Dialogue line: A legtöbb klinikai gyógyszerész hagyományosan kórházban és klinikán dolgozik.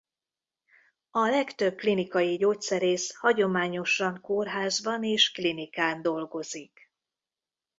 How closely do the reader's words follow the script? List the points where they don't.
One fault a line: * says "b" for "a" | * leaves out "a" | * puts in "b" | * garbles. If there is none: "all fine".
all fine